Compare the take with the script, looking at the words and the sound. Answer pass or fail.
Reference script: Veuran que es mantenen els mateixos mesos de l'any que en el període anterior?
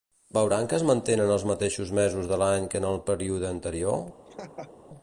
fail